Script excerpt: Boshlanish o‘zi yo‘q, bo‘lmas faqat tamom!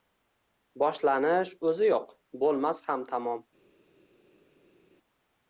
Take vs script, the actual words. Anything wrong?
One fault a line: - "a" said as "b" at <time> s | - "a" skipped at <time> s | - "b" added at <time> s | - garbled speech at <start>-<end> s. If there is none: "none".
- "faqat" said as "ham" at 2.9 s